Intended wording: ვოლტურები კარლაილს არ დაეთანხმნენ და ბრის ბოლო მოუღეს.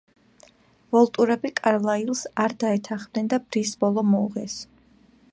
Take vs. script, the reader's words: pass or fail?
pass